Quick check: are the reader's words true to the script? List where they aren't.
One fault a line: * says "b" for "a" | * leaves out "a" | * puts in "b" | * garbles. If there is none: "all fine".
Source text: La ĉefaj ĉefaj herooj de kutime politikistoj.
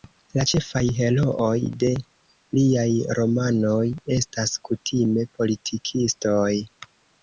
* leaves out "ĉefaj"
* puts in "liaj romanoj estas"